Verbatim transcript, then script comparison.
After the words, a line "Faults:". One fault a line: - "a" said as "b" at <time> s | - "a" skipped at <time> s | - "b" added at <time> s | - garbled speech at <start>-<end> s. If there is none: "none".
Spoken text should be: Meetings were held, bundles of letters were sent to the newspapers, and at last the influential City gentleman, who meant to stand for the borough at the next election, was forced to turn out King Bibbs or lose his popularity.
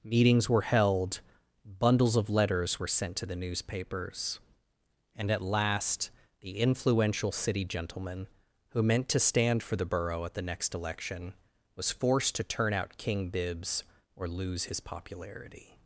Meetings were held, bundles of letters were sent to the newspapers, and at last the influential City gentleman, who meant to stand for the borough at the next election, was forced to turn out King Bibbs or lose his popularity.
Faults:
none